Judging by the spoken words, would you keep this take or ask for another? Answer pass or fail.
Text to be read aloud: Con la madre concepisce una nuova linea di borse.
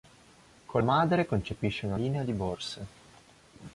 fail